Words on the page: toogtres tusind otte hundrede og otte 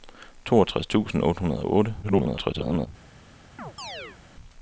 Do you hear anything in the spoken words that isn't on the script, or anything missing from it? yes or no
yes